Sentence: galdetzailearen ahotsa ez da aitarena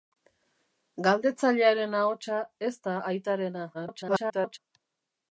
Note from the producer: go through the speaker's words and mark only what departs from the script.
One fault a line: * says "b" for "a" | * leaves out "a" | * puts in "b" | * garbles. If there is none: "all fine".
* garbles